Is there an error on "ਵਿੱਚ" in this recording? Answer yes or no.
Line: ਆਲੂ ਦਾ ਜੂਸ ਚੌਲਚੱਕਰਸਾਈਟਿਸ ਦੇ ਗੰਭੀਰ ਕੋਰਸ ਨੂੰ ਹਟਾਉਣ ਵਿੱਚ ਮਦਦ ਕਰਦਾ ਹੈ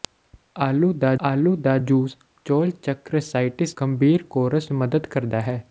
yes